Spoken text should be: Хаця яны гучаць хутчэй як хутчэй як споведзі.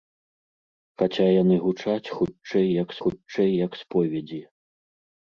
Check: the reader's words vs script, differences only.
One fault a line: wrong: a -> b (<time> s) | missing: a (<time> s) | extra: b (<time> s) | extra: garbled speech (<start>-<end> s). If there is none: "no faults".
no faults